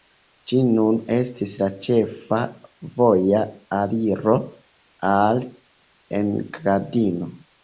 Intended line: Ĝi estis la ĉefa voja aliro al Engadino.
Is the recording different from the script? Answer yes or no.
yes